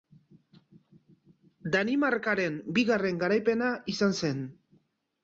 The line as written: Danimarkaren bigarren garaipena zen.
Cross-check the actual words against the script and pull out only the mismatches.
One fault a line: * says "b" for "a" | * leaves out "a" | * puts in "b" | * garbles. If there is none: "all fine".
* puts in "izan"